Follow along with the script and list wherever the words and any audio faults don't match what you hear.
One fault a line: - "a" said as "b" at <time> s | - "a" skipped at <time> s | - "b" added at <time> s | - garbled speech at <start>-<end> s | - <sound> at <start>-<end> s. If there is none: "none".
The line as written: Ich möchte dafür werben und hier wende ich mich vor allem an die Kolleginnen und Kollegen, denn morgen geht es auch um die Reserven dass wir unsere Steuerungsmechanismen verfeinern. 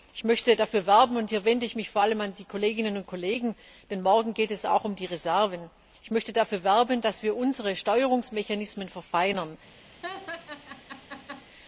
- laugh at 10.0-11.5 s